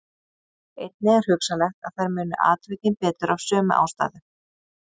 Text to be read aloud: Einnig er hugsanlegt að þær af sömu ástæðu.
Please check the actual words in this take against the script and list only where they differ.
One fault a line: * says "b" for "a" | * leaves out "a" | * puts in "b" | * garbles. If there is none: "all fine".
* puts in "muni atvikin betur"